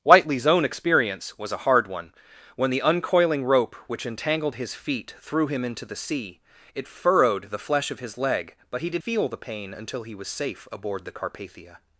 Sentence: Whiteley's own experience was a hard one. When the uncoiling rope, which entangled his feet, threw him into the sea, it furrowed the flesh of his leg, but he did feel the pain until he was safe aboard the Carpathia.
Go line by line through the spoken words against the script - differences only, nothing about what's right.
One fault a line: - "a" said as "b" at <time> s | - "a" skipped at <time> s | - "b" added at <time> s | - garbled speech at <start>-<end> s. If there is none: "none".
none